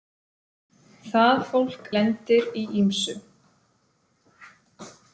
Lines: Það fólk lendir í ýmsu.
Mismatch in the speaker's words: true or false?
false